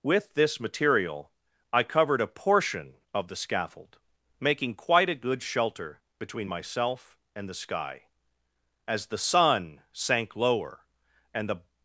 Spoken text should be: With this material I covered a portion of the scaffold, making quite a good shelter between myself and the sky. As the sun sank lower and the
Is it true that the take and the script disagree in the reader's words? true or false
false